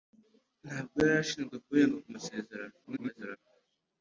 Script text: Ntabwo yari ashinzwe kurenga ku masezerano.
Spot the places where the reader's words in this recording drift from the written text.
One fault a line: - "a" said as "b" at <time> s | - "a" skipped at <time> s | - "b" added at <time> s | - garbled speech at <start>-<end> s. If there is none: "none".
- garbled speech at 2.8-3.4 s